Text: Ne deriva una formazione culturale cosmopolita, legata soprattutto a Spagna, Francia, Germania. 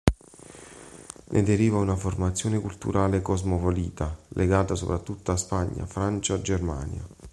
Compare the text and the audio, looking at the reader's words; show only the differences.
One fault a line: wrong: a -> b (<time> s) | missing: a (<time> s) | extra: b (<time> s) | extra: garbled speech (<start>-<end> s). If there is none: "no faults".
no faults